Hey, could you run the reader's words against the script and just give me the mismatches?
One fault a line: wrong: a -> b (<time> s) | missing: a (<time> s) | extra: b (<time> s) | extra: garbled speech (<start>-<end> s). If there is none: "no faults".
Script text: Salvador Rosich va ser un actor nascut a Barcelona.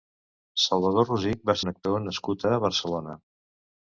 missing: ser (1.6 s)